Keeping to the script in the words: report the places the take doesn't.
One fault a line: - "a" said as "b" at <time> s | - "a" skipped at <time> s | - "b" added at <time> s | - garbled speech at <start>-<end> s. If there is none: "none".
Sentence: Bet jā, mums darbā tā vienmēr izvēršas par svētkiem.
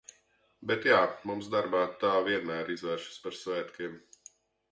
none